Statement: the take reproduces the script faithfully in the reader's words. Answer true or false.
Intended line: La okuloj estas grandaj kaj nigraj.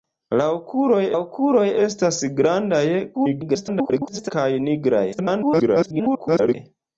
false